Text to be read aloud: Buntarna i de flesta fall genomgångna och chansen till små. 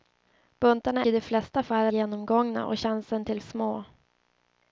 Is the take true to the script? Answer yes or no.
yes